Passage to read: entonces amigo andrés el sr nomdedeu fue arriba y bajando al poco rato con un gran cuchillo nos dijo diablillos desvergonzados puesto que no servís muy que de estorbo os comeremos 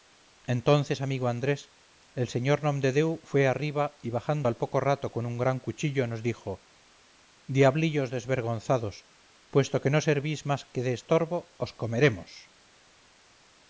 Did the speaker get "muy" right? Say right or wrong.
wrong